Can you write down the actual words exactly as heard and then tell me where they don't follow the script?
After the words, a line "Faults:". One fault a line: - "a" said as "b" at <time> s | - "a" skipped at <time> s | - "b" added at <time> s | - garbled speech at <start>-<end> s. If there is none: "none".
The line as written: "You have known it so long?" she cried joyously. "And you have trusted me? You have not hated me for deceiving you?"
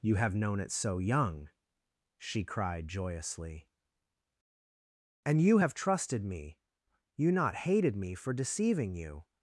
"You have known it so young?" she cried joyously. "And you have trusted me? You not hated me for deceiving you?"
Faults:
- "long" said as "young" at 1.0 s
- "have" skipped at 7.3 s